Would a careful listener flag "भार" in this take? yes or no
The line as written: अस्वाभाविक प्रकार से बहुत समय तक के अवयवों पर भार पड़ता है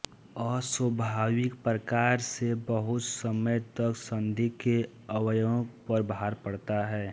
no